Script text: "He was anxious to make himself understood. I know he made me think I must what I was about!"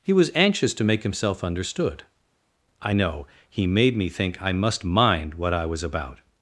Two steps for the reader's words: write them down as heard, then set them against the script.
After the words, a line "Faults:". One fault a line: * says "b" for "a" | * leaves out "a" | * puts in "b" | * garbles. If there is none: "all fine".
"He was anxious to make himself understood. I know he made me think I must mind what I was about!"
Faults:
* puts in "mind"